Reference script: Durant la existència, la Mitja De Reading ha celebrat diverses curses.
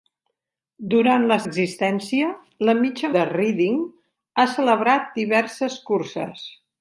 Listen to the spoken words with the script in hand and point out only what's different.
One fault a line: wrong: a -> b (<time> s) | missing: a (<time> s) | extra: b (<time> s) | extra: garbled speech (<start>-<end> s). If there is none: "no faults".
no faults